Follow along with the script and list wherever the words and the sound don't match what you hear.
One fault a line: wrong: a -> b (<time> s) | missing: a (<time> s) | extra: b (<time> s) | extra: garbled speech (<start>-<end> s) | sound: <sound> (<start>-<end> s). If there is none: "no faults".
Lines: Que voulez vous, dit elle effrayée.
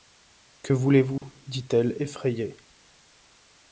sound: dropout (1.2-1.2 s)